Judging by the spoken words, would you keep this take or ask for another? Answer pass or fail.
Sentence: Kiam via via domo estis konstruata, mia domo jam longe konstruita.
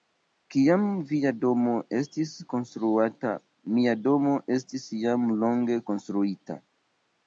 fail